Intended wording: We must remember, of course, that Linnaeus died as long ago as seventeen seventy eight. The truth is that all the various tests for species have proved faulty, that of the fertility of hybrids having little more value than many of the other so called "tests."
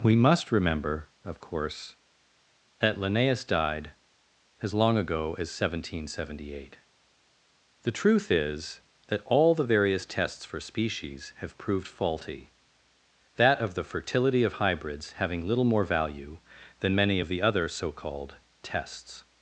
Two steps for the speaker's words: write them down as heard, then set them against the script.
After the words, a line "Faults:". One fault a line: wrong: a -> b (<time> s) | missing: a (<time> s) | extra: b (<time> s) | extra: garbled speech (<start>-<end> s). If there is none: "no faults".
We must remember, of course, that Linnaeus died as long ago as seventeen seventy eight. The truth is that all the various tests for species have proved faulty, that of the fertility of hybrids having little more value than many of the other so called "tests."
Faults:
no faults